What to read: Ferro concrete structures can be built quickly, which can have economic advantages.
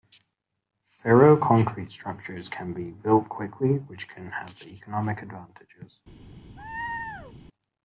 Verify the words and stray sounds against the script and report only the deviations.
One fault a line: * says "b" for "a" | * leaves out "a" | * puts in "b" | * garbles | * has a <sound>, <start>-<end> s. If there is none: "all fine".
* has a laugh, 6.6-7.3 s